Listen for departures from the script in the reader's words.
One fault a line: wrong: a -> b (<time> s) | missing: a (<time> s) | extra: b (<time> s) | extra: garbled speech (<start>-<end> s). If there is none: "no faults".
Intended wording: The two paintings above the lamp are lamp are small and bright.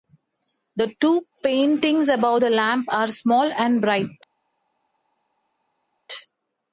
missing: lamp are (3.1 s)